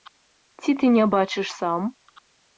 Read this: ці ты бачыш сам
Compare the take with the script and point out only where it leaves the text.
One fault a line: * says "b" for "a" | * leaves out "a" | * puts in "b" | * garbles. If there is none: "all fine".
* puts in "не"